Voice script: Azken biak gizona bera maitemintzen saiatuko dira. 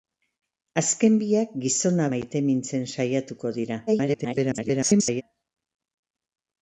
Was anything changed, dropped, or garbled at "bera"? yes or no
yes